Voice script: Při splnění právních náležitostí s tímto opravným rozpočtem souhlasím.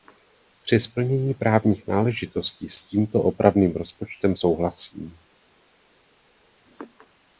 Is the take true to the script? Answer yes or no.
yes